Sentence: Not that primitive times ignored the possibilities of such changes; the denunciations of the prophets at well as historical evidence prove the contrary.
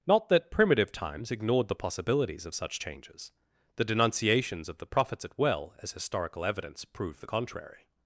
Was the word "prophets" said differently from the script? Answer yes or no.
no